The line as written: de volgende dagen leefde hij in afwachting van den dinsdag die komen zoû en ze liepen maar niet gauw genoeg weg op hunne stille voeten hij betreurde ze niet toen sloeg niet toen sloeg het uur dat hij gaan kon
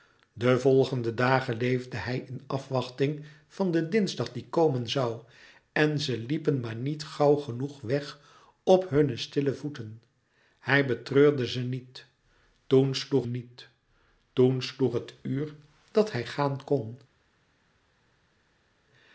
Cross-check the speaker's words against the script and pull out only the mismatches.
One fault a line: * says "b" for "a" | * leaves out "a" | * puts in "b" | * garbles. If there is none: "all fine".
all fine